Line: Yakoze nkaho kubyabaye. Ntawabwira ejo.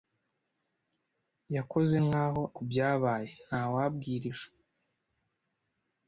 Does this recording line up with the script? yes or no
yes